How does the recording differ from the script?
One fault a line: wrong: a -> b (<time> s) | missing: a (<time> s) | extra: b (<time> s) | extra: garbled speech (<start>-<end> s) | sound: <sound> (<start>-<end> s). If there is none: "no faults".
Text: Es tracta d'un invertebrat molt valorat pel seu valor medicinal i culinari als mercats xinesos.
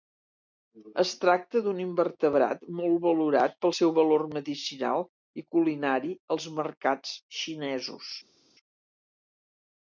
no faults